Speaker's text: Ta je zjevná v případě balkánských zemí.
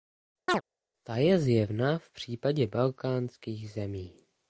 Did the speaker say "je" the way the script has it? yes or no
yes